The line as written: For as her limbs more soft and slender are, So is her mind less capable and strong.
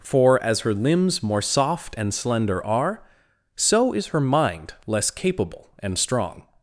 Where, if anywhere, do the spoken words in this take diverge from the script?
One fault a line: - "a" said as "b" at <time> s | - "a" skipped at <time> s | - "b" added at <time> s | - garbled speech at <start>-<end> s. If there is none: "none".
none